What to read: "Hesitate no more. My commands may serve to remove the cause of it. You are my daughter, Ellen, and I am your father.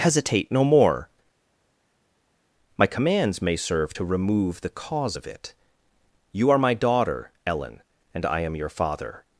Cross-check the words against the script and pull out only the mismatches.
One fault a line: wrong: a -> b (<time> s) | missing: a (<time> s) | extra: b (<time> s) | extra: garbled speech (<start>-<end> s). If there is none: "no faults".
no faults